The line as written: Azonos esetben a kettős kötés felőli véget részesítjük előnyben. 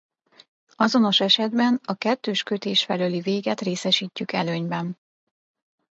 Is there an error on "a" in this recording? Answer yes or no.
no